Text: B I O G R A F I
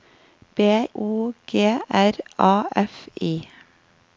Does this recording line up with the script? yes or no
no